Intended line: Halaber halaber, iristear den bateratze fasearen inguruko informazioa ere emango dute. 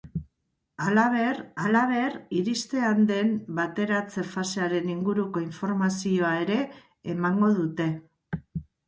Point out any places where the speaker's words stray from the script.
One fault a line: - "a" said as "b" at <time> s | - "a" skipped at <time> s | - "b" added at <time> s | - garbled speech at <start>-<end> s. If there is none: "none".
none